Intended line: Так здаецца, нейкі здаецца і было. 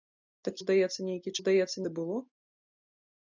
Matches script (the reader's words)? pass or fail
pass